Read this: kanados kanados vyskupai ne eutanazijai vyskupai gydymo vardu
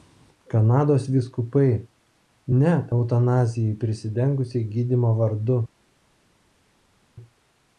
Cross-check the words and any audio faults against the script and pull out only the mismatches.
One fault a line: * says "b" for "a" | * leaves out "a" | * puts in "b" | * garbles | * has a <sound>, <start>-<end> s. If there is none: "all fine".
* leaves out "kanados"
* says "prisidengusiai" for "vyskupai"